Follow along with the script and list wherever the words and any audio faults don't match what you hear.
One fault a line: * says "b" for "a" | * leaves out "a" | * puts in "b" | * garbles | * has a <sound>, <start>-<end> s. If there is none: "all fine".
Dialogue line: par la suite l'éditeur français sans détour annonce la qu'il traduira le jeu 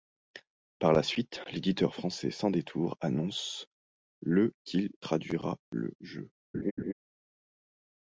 * says "le" for "la"
* has a laugh, 6.5-6.9 s